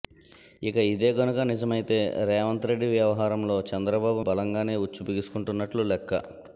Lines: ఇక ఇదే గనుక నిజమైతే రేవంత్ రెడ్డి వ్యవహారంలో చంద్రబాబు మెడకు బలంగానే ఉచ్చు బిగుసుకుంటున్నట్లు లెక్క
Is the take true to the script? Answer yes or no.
no